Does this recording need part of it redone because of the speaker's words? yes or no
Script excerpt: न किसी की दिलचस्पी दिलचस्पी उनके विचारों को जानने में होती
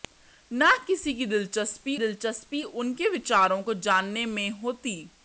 no